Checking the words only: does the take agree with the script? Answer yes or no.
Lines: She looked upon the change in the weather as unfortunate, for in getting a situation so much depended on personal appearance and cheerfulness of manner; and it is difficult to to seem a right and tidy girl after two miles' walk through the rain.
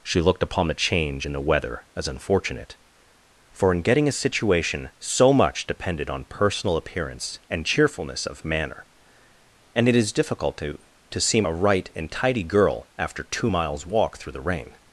yes